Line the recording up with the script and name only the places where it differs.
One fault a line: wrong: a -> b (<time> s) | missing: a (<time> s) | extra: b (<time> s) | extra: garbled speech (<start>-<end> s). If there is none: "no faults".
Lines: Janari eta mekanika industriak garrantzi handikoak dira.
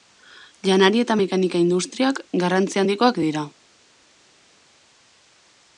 no faults